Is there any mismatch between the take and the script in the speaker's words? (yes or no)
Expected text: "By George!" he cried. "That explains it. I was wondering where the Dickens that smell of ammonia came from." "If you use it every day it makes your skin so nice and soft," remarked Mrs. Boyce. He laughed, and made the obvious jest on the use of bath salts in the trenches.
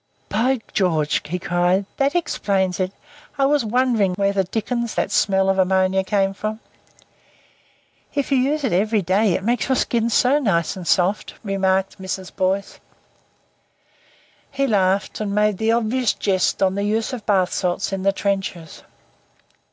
no